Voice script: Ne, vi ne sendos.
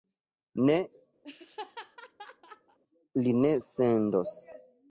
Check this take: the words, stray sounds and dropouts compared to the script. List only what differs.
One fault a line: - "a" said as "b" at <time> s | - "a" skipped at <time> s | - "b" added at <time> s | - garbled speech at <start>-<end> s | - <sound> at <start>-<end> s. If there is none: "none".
- laugh at 1.2-2.8 s
- "vi" said as "li" at 3.2 s